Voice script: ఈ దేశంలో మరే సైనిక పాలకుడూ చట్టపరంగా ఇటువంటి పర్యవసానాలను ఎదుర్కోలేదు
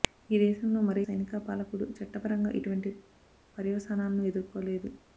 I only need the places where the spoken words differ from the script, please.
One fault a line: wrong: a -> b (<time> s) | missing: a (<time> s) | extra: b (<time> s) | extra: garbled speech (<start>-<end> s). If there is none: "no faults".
no faults